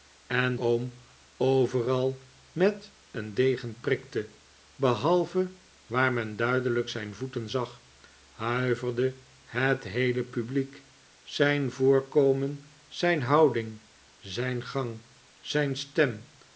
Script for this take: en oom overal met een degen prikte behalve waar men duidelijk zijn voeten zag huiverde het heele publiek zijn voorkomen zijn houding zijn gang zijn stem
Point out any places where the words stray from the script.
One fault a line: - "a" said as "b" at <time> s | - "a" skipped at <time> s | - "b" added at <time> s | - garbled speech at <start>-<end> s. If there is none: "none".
none